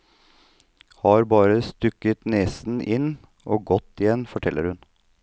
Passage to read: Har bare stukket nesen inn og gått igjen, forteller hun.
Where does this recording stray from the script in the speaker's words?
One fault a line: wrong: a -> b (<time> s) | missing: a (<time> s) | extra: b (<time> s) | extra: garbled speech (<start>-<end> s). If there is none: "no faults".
no faults